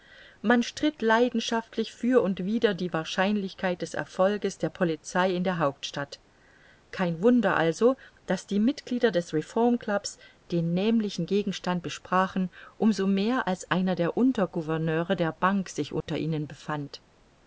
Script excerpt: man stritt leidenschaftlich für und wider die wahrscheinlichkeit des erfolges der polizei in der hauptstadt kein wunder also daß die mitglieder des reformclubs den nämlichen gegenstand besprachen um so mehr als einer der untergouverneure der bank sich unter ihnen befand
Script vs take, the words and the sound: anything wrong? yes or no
yes